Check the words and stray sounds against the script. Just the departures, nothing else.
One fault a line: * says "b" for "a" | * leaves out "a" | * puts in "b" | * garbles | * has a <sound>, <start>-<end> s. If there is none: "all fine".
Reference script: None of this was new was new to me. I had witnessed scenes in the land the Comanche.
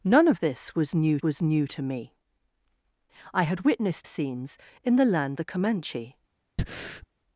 * has a breath, 6.6-7.1 s